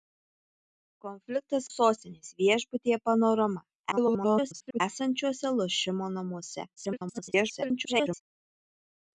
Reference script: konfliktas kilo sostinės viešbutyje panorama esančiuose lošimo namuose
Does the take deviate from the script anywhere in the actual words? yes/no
yes